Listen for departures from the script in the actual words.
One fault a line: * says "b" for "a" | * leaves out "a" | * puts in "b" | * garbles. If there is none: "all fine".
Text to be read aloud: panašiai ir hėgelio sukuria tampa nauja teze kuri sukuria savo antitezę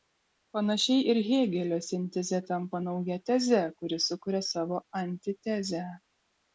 * says "sintezė" for "sukuria"